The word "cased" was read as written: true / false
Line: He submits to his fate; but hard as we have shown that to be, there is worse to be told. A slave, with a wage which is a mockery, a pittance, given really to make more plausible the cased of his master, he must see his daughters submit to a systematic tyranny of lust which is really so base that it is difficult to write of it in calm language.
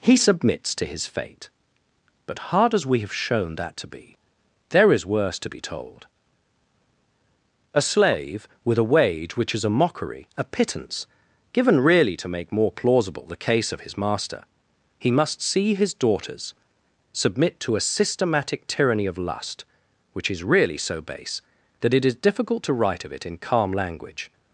false